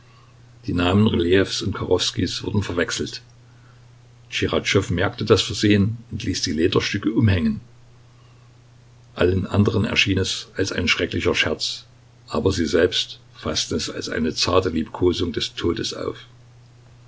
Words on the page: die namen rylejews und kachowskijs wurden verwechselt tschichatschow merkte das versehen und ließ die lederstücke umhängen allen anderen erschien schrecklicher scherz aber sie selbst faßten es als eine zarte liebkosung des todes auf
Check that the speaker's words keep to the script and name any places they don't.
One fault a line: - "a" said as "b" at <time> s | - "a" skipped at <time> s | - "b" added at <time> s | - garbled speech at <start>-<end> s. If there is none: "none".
- "es als ein" added at 10.2 s